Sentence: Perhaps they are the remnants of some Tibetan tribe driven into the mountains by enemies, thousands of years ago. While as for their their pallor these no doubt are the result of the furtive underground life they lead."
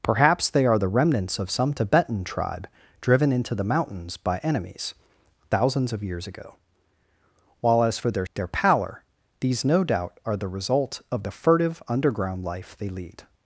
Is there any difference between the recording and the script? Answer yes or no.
no